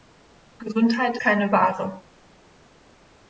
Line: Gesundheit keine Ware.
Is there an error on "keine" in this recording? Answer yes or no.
no